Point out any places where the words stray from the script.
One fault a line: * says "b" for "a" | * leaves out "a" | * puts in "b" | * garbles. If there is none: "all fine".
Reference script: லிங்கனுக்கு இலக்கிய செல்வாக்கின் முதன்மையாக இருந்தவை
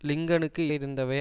* leaves out "இலக்கிய செல்வாக்கின் முதன்மையாக"